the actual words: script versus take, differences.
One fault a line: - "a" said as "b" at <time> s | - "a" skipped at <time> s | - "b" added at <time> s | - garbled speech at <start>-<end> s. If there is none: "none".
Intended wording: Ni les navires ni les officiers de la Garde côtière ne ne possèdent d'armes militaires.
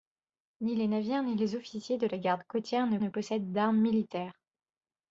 none